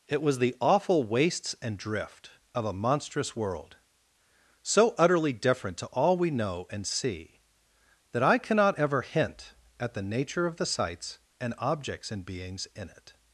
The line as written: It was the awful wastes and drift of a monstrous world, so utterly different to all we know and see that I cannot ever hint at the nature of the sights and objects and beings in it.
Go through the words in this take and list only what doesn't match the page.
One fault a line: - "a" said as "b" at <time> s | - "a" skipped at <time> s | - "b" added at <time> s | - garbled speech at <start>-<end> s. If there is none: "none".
none